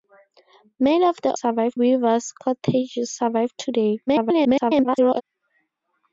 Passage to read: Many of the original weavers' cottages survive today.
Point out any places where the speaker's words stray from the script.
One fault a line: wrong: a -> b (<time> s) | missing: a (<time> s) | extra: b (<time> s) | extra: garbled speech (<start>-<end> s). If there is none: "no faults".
wrong: original -> survive (1.3 s)
extra: garbled speech (4.1-5.2 s)